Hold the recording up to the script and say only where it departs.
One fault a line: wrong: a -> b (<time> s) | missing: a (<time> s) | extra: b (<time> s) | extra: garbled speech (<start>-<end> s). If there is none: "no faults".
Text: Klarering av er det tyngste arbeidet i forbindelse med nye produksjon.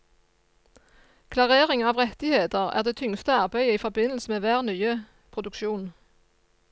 extra: rettigheter (2.0 s)
extra: hver (4.5 s)